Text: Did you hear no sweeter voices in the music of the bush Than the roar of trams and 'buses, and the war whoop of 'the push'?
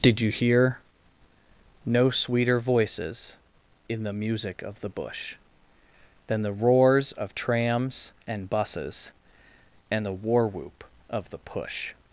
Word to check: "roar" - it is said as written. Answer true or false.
false